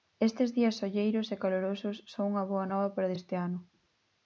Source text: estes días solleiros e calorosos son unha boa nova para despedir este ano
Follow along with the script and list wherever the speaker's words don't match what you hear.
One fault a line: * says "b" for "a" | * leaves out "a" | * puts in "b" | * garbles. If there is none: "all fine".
* leaves out "despedir"